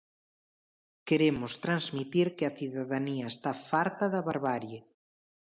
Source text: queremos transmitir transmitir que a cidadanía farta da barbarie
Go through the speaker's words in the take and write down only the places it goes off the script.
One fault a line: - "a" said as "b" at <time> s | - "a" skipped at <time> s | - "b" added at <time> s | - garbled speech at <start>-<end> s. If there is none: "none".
- "transmitir" skipped at 2.3 s
- "está" added at 3.3 s